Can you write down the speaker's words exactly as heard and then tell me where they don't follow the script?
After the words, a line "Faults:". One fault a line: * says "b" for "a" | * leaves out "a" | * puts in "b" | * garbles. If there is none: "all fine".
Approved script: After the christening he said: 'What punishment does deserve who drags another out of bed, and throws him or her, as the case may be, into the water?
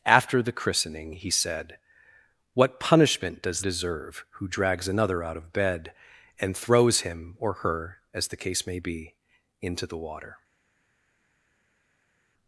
After the christening he said: 'What punishment does deserve who drags another out of bed, and throws him or her, as the case may be, into the water?
Faults:
all fine